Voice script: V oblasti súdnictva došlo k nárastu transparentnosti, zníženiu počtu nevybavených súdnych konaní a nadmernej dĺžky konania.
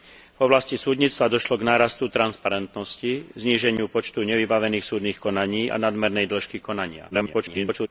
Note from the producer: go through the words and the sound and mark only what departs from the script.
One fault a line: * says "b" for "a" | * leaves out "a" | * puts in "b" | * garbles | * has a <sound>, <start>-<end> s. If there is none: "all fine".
* garbles